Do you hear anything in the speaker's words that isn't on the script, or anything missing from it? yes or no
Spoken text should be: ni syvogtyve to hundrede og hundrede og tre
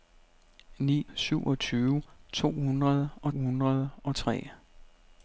no